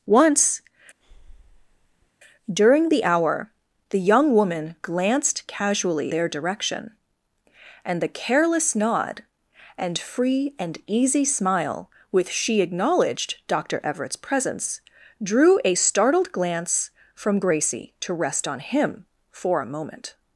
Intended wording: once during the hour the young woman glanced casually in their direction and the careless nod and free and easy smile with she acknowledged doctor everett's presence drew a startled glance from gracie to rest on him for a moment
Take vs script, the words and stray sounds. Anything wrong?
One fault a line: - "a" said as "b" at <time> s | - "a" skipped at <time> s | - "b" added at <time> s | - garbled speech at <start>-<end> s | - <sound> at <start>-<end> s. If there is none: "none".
- breath at 1.0-2.1 s
- "in" skipped at 6.1 s